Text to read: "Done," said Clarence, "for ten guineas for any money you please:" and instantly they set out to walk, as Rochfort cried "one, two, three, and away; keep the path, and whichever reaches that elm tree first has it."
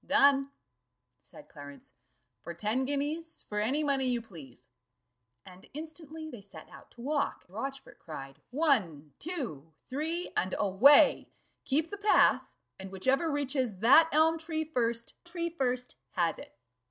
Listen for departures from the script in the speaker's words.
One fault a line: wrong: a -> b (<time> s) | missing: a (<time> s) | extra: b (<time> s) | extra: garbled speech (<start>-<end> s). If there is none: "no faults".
missing: as (7.4 s)
extra: tree first (15.2 s)